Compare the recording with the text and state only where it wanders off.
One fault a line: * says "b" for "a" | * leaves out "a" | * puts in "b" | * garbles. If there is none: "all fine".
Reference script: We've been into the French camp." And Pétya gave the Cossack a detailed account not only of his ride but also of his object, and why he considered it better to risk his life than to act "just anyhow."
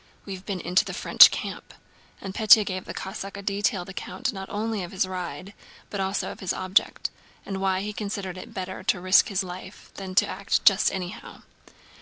all fine